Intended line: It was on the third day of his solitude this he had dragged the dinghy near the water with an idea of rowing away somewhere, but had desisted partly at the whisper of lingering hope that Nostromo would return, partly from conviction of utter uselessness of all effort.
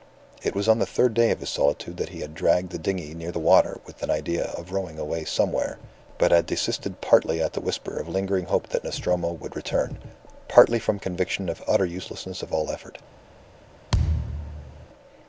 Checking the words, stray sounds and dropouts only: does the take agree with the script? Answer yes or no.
no